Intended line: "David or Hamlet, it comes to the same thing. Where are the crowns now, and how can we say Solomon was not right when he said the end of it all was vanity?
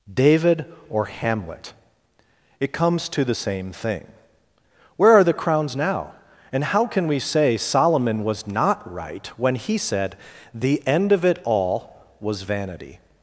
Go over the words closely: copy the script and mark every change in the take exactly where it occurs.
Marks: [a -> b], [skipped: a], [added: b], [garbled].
"David or Hamlet, it comes to the same thing. Where are the crowns now, and how can we say Solomon was not right when he said the end of it all was vanity?